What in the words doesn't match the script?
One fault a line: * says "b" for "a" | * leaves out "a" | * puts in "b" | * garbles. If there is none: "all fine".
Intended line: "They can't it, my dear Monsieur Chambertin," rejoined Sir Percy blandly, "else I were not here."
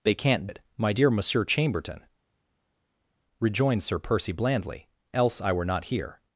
all fine